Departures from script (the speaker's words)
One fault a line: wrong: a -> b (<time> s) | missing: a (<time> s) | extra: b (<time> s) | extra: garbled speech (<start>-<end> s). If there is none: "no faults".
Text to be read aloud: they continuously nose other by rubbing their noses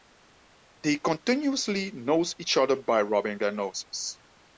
extra: each (2.4 s)